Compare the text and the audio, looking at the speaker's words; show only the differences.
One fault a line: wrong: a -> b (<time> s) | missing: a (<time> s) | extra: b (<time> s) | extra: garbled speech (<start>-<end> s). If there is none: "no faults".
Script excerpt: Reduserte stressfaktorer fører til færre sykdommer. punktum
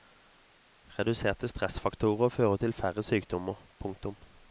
no faults